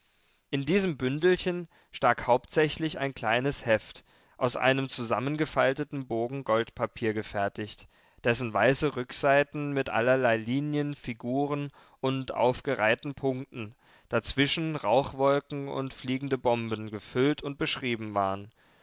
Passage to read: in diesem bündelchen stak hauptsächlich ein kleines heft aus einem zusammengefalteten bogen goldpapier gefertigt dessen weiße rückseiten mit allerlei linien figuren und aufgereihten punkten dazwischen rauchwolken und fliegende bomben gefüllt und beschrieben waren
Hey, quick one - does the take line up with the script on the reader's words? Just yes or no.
yes